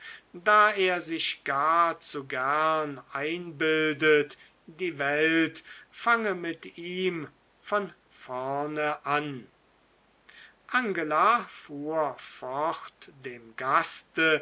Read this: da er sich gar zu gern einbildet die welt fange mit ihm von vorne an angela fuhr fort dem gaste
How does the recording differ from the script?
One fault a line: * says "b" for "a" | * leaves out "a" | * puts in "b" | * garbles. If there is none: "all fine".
all fine